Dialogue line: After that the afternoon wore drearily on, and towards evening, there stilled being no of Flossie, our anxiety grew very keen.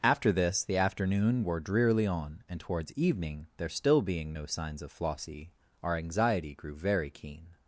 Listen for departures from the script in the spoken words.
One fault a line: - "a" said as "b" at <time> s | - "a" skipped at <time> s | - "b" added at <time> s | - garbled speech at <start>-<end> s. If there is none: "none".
- "that" said as "this" at 0.3 s
- "stilled" said as "still" at 3.7 s
- "signs" added at 4.5 s